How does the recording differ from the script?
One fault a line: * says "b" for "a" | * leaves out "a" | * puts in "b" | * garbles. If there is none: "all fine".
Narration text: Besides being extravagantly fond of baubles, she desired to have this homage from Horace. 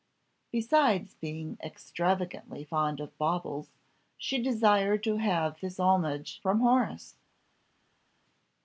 all fine